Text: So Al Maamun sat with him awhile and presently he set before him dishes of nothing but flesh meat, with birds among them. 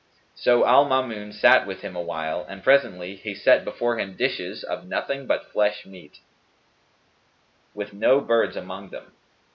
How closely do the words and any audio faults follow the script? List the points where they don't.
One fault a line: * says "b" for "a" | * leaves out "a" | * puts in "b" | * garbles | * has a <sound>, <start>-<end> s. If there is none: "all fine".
* puts in "no"